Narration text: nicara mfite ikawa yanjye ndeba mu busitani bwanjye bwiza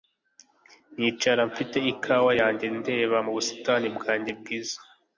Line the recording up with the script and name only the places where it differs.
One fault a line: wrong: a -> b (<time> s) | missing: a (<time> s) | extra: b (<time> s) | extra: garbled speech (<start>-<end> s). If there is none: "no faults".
no faults